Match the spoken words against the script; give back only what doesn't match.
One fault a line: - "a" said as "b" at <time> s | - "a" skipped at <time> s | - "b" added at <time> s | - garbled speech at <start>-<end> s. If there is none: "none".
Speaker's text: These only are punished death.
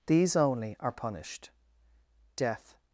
none